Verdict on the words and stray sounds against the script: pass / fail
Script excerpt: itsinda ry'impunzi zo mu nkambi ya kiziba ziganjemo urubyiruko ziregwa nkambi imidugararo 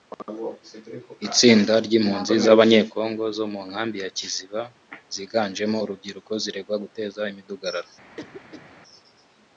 fail